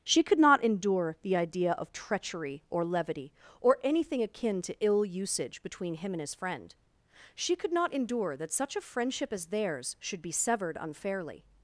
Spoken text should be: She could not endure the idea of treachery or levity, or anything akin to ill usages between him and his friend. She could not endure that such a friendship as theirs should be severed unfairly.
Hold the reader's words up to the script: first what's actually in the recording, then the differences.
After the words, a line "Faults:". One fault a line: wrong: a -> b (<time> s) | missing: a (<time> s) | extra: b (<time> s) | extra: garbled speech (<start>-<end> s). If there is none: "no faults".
She could not endure the idea of treachery or levity, or anything akin to ill usage between him and his friend. She could not endure that such a friendship as theirs should be severed unfairly.
Faults:
wrong: usages -> usage (5.0 s)